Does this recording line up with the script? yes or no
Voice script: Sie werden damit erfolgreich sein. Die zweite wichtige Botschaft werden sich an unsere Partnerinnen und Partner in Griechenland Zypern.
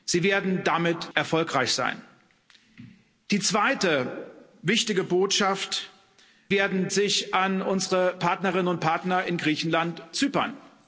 yes